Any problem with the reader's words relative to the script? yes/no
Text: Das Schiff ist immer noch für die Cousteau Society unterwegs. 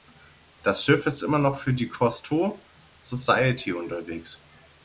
no